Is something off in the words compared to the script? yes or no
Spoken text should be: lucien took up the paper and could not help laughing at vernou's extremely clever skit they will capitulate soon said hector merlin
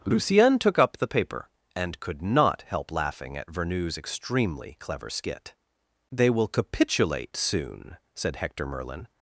no